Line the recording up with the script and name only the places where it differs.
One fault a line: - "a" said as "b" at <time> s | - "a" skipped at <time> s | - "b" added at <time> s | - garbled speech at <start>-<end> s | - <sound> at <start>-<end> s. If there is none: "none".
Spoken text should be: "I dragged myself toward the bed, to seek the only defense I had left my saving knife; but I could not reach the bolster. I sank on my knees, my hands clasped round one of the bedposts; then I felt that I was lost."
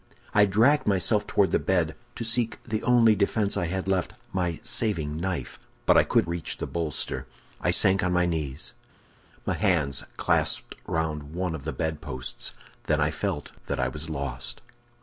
- "not" skipped at 6.2 s